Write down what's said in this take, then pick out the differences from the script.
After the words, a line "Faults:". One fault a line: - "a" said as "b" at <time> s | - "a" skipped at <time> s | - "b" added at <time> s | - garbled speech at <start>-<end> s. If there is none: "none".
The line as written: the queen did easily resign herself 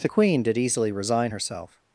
the queen did easily resign herself
Faults:
none